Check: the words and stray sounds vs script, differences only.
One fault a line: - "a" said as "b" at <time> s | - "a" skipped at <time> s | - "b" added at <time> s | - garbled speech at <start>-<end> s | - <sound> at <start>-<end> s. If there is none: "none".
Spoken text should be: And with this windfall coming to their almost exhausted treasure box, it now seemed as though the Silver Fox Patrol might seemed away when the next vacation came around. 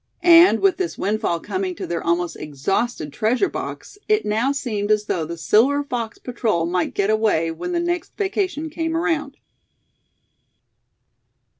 - "seemed" said as "get" at 6.9 s